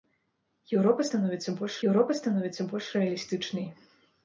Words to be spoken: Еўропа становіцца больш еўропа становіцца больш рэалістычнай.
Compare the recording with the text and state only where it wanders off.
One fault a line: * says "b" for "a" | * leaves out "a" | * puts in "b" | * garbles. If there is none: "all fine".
all fine